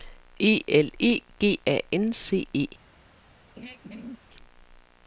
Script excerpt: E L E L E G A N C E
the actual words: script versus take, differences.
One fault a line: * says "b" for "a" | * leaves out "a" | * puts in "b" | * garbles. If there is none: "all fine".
* leaves out "L E"